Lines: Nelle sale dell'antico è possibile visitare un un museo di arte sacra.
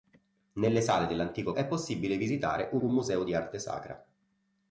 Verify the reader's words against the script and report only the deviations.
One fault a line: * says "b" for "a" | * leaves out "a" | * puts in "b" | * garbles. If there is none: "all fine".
all fine